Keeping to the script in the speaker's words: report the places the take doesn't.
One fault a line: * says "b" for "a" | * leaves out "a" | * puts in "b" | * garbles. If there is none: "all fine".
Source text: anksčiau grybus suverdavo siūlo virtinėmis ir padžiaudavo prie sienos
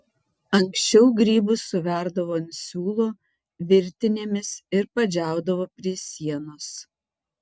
* puts in "ant"